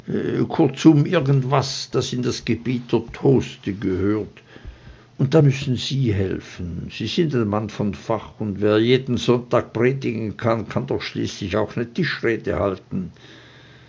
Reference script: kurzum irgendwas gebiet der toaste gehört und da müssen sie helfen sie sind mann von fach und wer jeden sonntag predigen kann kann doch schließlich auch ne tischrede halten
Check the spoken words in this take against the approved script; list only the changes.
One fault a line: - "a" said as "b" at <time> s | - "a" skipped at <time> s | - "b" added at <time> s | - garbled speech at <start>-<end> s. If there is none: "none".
- "das in das" added at 1.9 s
- "ein" added at 7.3 s